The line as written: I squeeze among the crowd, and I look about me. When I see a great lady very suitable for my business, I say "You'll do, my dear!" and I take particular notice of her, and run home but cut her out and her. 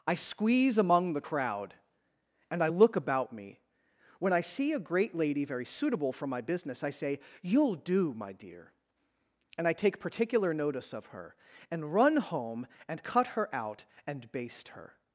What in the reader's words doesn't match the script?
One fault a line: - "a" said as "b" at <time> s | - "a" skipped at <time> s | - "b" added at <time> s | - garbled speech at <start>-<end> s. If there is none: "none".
- "but" said as "and" at 12.9 s
- "baste" added at 14.3 s